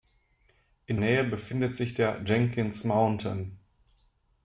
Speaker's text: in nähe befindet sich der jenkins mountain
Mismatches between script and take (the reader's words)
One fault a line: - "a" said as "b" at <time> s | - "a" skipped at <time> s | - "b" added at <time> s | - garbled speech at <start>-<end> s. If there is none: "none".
none